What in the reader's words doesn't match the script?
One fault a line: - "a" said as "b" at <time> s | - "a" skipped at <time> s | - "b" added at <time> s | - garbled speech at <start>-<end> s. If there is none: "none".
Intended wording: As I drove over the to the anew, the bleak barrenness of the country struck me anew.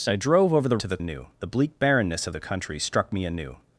none